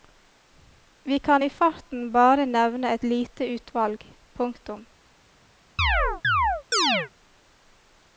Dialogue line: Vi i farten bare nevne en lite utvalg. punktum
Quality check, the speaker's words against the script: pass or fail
fail